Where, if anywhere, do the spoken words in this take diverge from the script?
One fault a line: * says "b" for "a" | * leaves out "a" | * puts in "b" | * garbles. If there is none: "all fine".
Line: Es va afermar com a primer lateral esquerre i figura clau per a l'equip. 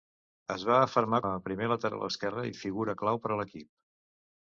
* leaves out "com"